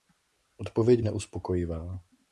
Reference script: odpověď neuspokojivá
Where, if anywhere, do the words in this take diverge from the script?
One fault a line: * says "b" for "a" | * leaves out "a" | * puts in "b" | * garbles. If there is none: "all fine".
all fine